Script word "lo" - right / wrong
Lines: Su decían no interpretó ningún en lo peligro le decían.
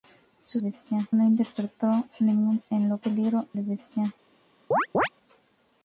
right